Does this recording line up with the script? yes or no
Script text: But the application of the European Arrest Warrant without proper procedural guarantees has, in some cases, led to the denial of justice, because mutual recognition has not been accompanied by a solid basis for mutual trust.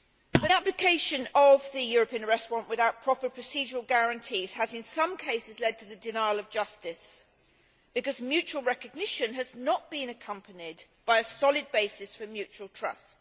no